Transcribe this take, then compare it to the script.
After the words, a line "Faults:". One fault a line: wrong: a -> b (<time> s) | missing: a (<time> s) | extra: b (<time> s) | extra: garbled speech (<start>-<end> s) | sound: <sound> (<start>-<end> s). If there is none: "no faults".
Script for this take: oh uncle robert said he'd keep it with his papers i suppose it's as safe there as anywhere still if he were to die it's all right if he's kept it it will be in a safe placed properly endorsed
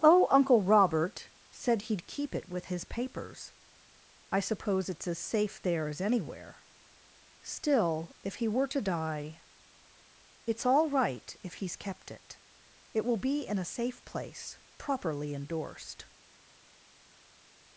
oh uncle robert said he'd keep it with his papers i suppose it's as safe there as anywhere still if he were to die it's all right if he's kept it it will be in a safe place properly endorsed
Faults:
wrong: placed -> place (14.0 s)